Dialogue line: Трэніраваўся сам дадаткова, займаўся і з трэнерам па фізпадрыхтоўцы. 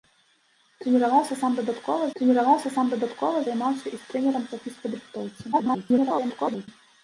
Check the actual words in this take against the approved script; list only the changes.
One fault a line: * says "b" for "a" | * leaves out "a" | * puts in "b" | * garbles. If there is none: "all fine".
* puts in "трэніраваўся сам дадаткова"
* garbles